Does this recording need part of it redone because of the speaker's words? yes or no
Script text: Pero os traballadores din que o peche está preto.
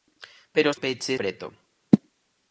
yes